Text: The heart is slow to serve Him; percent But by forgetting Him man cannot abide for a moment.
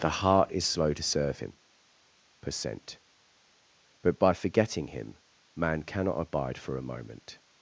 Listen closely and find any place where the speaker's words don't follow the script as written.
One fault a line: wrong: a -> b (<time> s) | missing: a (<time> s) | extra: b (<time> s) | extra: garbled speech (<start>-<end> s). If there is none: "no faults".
no faults